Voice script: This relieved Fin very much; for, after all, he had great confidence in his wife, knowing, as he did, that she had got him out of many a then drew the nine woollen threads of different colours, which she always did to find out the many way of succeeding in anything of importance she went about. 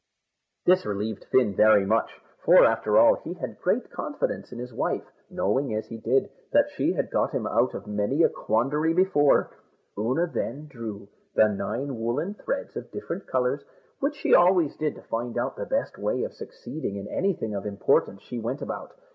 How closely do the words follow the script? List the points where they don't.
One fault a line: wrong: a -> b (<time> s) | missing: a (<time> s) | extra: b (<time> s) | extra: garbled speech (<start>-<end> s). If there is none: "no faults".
extra: quandary before Oonagh (8.3 s)
wrong: many -> best (15.6 s)